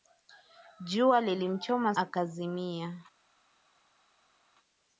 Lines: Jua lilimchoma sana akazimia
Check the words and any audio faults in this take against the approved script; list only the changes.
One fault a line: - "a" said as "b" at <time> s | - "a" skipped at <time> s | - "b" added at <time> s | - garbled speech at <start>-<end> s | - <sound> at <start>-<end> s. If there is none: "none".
- "sana" skipped at 1.9 s